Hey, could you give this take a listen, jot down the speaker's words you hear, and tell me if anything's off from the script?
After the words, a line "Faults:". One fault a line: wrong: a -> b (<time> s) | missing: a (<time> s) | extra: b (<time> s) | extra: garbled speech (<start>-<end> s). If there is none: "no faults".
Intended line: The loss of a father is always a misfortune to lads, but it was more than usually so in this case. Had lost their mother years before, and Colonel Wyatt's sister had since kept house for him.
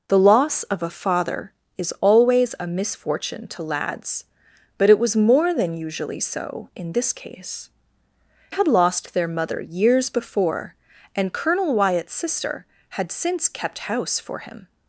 The loss of a father is always a misfortune to lads, but it was more than usually so in this case. Had lost their mother years before, and Colonel Wyatt's sister had since kept house for him.
Faults:
no faults